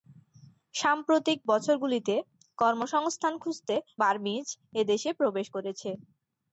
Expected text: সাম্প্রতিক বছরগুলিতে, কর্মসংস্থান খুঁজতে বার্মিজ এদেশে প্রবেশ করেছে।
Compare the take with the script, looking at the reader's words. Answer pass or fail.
pass